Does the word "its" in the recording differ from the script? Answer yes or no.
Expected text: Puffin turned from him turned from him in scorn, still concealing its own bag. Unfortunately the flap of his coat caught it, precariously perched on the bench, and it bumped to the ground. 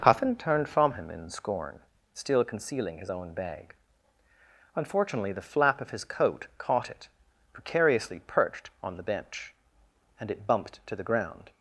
yes